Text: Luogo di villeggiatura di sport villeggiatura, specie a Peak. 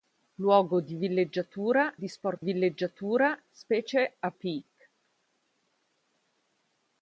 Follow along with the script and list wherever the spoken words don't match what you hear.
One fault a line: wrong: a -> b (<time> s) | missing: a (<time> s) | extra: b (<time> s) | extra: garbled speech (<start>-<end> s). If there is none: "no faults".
no faults